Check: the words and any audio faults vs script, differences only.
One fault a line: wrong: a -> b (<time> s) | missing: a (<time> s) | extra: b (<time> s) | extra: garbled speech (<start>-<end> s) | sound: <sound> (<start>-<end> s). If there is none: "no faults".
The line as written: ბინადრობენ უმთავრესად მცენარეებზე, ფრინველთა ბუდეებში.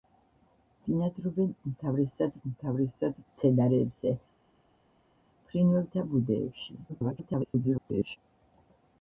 extra: უმთავრესად (2.5 s)
extra: garbled speech (6.9-8.2 s)